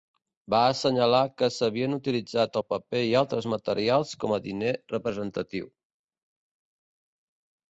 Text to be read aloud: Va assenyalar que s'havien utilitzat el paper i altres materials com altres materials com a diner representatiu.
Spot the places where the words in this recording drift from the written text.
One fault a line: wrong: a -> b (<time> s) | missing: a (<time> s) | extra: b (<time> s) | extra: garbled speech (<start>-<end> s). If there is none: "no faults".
missing: altres materials com (4.4 s)